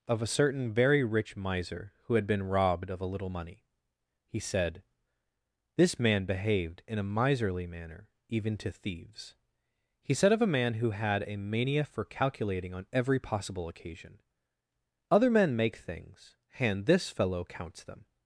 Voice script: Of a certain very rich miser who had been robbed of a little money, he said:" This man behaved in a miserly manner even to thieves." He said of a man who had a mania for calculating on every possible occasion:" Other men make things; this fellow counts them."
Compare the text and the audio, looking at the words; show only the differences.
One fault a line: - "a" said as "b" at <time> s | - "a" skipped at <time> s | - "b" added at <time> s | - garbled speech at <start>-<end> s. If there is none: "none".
- "and" added at 16.6 s